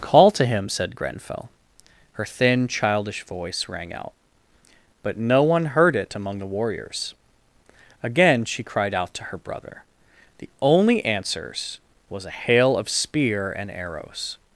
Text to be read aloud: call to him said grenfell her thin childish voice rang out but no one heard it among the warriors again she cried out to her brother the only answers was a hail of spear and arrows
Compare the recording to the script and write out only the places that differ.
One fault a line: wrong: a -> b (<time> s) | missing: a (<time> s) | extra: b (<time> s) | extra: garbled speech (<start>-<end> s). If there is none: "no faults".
no faults